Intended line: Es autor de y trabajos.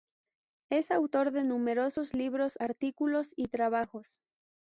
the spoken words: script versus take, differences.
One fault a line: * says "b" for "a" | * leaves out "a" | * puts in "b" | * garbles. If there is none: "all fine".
* puts in "numerosos libros artículos"